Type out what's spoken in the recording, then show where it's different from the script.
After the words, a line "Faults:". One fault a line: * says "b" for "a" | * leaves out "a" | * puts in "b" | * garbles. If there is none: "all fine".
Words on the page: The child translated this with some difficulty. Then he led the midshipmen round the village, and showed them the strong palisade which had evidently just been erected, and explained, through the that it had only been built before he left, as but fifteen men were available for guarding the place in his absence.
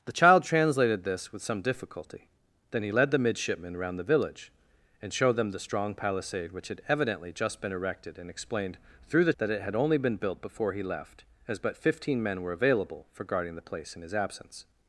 The child translated this with some difficulty. Then he led the midshipmen round the village, and showed them the strong palisade which had evidently just been erected, and explained, through the that it had only been built before he left, as but fifteen men were available for guarding the place in his absence.
Faults:
all fine